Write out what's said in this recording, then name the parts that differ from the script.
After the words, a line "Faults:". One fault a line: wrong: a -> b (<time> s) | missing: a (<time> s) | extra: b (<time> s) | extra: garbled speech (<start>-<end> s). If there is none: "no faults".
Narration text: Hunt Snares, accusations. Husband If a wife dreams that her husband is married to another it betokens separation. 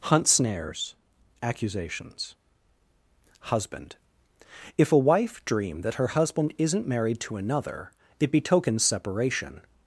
Hunt Snares, accusations. Husband If a wife dream that her husband isn't married to another it betokens separation.
Faults:
wrong: dreams -> dream (5.5 s)
wrong: is -> isn't (6.6 s)